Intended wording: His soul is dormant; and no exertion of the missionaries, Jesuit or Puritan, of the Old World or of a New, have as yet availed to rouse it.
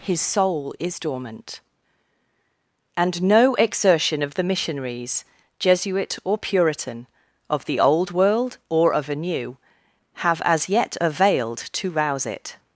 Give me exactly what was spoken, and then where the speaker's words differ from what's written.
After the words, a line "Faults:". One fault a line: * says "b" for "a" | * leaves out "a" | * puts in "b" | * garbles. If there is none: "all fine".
His soul is dormant; and no exertion of the missionaries, Jesuit or Puritan, of the Old World or of a New, have as yet availed to rouse it.
Faults:
all fine